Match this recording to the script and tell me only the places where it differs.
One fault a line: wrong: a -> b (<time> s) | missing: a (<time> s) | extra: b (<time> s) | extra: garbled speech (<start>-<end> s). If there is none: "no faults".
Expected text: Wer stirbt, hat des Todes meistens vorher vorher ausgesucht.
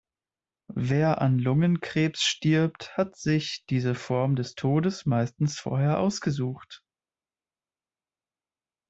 extra: an Lungenkrebs (1.2 s)
extra: sich diese Form (3.1 s)
missing: vorher (6.0 s)